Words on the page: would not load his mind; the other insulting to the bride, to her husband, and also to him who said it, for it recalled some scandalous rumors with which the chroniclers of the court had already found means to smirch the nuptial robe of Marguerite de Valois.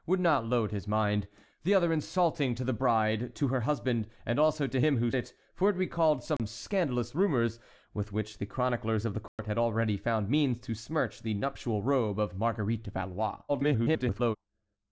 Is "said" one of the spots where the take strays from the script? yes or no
yes